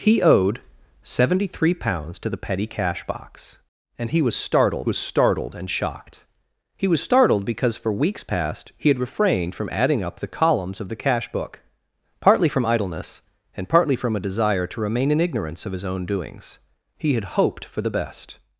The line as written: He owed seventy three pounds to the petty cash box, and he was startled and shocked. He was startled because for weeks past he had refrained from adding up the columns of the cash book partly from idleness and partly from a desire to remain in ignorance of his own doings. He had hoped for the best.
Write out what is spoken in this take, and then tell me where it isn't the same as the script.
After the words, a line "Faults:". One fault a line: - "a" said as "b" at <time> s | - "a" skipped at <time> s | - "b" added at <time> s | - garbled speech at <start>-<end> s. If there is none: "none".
He owed seventy three pounds to the petty cash box, and he was startled was startled and shocked. He was startled because for weeks past he had refrained from adding up the columns of the cash book partly from idleness and partly from a desire to remain in ignorance of his own doings. He had hoped for the best.
Faults:
- "was startled" added at 4.8 s